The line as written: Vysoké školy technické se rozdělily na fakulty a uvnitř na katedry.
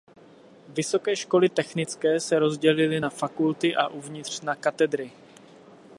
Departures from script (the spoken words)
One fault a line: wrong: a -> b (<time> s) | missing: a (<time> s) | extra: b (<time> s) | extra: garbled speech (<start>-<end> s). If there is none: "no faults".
no faults